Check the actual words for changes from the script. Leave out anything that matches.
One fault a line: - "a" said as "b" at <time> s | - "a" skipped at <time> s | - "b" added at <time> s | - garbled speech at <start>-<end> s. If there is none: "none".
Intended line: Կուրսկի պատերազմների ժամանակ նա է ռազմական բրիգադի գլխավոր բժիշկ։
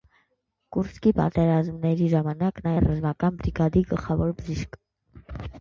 none